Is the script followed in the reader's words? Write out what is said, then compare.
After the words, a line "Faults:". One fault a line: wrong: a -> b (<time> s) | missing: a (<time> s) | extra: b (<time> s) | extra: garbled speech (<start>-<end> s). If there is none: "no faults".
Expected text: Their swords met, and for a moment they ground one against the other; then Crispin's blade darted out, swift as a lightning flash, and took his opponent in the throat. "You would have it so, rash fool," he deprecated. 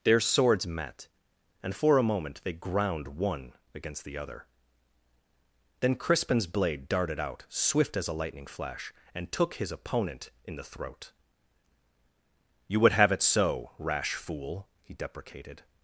Their swords met, and for a moment they ground one against the other; then Crispin's blade darted out, swift as a lightning flash, and took his opponent in the throat. "You would have it so, rash fool," he deprecated.
Faults:
no faults